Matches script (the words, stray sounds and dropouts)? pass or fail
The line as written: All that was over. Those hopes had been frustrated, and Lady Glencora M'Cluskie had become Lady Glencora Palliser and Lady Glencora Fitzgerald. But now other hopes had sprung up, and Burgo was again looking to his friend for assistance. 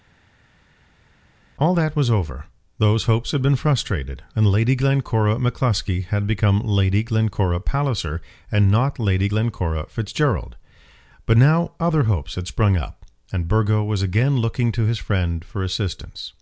fail